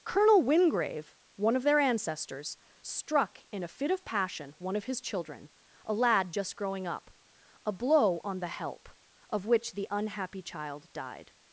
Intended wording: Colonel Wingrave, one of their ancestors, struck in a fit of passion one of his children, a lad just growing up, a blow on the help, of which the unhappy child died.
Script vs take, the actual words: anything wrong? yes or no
no